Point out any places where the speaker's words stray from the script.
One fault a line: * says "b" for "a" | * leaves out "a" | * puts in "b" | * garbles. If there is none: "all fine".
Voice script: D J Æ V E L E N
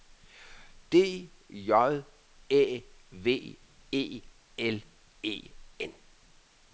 all fine